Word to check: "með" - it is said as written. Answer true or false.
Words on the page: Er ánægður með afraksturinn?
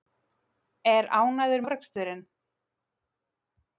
false